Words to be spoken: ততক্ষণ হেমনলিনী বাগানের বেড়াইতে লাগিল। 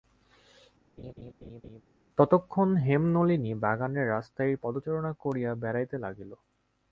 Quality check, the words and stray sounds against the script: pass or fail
fail